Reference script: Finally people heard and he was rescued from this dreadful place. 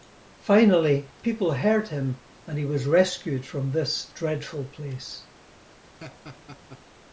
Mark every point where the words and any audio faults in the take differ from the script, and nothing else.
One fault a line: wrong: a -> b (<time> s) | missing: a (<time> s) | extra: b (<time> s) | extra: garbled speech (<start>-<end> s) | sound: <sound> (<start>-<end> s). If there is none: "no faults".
extra: him (1.9 s)
sound: laugh (6.0-6.8 s)